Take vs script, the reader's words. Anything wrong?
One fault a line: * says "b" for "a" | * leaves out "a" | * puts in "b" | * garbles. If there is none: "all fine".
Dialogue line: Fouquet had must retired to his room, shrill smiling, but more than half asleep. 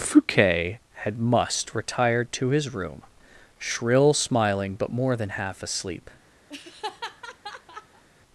all fine